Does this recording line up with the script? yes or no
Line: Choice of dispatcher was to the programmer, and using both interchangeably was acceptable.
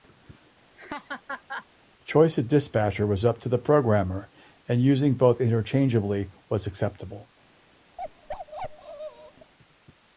no